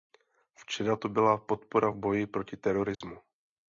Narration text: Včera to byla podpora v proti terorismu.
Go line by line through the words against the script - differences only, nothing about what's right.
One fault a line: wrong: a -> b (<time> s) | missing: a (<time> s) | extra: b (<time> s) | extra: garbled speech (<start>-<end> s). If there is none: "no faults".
extra: boji (2.0 s)